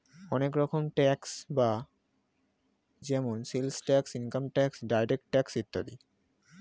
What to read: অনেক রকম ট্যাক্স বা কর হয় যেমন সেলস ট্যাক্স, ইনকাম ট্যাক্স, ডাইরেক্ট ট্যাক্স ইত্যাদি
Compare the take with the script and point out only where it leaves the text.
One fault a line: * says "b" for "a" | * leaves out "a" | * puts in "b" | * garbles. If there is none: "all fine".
* leaves out "কর হয়"